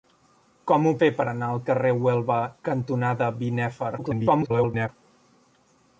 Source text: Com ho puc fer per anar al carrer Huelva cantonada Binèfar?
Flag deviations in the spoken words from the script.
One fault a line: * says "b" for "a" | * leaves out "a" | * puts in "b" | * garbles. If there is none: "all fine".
* leaves out "puc"
* garbles